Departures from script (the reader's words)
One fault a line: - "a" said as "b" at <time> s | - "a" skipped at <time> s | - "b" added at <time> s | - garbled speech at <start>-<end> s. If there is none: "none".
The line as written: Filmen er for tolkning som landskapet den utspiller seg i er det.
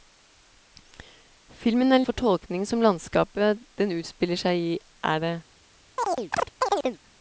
none